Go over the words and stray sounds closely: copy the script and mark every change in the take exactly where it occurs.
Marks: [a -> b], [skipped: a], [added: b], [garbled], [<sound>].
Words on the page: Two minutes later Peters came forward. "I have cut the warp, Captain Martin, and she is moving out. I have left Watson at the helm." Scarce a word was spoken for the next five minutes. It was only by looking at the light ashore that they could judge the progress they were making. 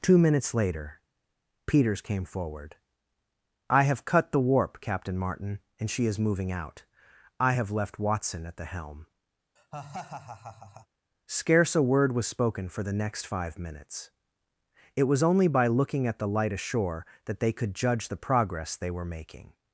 Two minutes later Peters came forward. "I have cut the warp, Captain Martin, and she is moving out. I have left Watson at the helm." [laugh] Scarce a word was spoken for the next five minutes. It was only by looking at the light ashore that they could judge the progress they were making.